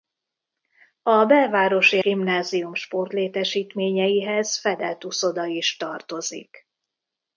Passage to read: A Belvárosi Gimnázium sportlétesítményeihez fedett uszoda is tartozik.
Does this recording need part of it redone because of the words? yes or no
no